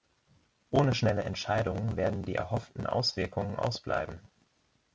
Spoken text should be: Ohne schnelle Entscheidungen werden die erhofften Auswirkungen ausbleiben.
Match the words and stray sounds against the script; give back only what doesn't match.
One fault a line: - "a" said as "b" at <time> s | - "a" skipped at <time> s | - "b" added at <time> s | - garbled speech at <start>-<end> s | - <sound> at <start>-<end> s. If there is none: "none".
none